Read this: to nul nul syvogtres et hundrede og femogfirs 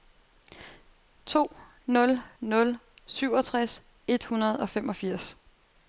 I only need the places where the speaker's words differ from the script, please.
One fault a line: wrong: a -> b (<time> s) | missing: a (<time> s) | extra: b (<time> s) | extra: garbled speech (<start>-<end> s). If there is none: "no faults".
no faults